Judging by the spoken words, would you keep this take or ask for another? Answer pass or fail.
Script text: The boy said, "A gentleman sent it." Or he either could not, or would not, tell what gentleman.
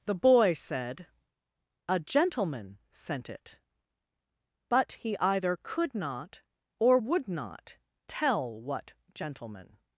fail